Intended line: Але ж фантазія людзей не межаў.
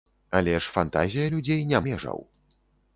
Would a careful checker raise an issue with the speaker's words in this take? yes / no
no